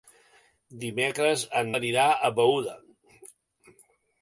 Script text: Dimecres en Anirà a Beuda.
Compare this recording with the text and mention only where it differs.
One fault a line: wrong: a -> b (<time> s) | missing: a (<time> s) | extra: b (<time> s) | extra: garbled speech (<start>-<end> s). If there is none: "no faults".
no faults